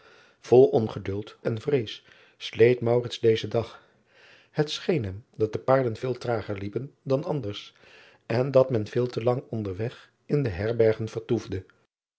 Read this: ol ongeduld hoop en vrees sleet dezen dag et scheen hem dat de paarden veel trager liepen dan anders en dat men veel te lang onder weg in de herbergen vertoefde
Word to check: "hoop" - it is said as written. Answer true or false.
false